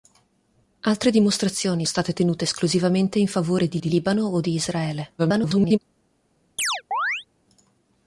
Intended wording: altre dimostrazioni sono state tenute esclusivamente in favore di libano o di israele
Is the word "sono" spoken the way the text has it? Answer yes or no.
no